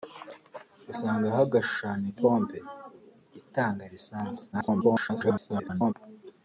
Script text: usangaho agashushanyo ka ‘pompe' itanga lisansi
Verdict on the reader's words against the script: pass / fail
fail